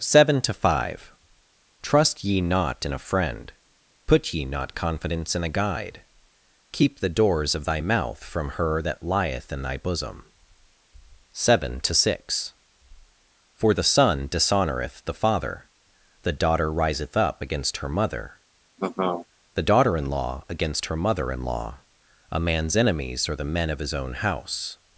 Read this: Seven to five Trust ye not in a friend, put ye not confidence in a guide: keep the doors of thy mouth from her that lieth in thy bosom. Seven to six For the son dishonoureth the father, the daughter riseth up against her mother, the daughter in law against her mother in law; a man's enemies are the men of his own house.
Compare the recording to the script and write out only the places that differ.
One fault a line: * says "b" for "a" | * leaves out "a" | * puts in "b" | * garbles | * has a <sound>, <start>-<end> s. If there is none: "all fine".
* has a laugh, 18.8-19.3 s